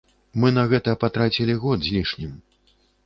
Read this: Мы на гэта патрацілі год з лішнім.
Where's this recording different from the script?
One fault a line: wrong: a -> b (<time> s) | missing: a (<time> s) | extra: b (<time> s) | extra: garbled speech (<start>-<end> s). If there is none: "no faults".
no faults